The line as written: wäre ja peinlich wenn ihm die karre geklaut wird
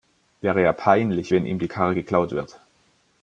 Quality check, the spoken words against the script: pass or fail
pass